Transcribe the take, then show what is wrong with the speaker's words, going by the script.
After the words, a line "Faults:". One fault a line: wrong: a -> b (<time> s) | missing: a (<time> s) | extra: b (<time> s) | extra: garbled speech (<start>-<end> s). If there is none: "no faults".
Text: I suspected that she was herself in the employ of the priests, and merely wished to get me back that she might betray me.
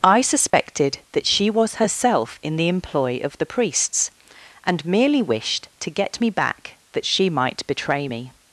I suspected that she was herself in the employ of the priests, and merely wished to get me back that she might betray me.
Faults:
no faults